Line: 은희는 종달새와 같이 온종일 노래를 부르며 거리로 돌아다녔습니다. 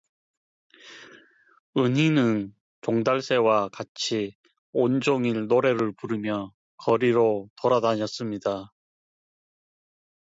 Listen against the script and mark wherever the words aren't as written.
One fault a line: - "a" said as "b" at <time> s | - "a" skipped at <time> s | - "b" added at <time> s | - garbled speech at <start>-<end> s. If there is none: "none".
none